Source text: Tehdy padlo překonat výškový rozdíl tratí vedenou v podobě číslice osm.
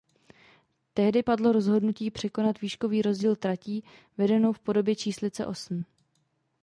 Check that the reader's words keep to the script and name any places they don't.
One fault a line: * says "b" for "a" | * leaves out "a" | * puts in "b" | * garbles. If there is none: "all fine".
* puts in "rozhodnutí"